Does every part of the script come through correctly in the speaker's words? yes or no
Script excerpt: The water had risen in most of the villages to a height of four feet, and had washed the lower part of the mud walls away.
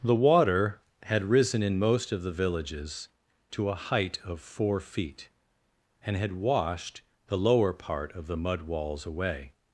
yes